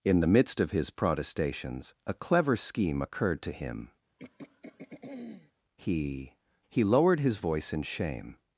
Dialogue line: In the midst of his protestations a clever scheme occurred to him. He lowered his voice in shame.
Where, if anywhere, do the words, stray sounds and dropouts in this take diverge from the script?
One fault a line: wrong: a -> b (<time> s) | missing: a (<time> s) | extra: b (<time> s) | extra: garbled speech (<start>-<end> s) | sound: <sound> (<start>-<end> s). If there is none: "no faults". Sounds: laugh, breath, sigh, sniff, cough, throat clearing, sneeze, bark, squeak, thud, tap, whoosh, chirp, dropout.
sound: throat clearing (4.2-5.5 s)
extra: He (6.7 s)